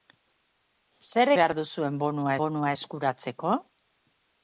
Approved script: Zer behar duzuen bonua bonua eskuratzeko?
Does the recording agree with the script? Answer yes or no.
yes